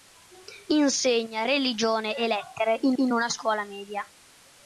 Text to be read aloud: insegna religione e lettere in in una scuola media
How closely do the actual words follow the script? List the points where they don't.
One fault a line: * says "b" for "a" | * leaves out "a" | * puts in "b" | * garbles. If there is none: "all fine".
all fine